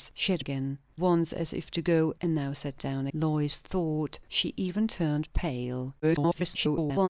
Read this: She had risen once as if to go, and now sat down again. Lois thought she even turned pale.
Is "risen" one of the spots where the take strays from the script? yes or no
yes